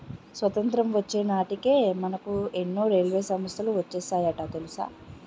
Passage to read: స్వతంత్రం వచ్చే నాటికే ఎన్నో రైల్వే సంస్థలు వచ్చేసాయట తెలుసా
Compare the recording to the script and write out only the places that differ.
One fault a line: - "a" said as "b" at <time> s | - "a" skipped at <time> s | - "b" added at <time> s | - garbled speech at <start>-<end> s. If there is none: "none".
- "మనకు" added at 2.0 s